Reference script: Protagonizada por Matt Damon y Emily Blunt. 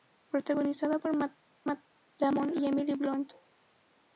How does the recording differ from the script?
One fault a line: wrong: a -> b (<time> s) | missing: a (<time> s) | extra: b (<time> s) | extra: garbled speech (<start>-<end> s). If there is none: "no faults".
extra: Matt (1.6 s)